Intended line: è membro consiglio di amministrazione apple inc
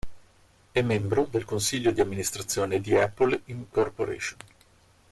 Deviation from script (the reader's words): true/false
true